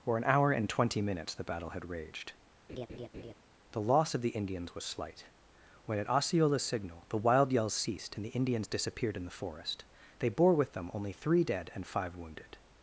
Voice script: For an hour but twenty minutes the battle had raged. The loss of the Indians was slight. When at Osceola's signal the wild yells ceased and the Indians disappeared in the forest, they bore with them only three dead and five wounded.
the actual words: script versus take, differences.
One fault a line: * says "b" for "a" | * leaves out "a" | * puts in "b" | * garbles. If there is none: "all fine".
* says "and" for "but"